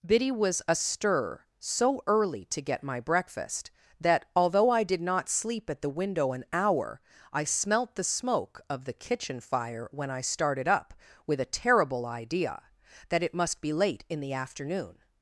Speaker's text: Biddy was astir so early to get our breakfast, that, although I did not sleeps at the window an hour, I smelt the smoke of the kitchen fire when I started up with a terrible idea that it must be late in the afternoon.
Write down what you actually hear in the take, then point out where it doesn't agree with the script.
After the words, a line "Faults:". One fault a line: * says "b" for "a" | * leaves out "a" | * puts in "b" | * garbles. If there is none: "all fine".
Biddy was astir so early to get my breakfast, that, although I did not sleep at the window an hour, I smelt the smoke of the kitchen fire when I started up with a terrible idea that it must be late in the afternoon.
Faults:
* says "my" for "our"
* says "sleep" for "sleeps"